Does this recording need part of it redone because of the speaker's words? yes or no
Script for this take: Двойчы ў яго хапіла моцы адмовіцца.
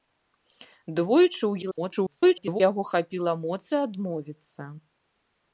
yes